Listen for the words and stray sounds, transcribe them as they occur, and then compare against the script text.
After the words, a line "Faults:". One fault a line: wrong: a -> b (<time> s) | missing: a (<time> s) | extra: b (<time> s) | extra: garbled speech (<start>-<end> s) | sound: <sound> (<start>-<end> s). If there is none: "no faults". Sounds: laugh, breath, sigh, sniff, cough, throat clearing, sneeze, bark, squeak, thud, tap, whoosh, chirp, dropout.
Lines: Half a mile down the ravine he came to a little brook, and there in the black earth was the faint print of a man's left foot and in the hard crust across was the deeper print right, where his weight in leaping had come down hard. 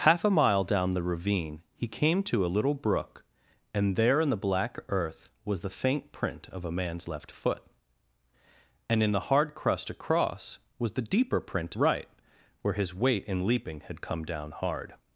Half a mile down the ravine he came to a little brook, and there in the black earth was the faint print of a man's left foot and in the hard crust across was the deeper print right, where his weight in leaping had come down hard.
Faults:
no faults